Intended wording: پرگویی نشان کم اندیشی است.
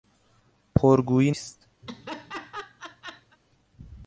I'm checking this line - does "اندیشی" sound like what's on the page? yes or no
no